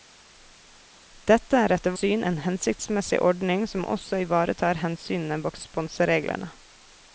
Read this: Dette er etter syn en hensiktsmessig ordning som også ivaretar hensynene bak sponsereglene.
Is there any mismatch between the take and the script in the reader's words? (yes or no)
no